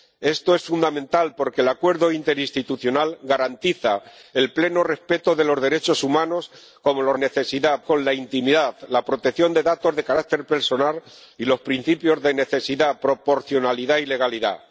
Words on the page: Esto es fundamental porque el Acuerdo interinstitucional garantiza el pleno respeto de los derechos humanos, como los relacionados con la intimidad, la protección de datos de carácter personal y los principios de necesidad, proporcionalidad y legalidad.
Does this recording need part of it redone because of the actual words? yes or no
yes